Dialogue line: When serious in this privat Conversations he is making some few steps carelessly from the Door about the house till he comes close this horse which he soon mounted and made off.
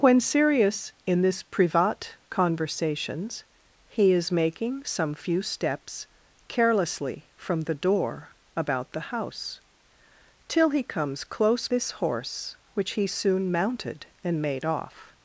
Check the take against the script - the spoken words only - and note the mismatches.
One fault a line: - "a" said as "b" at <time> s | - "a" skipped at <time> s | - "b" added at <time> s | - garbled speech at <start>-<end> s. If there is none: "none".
none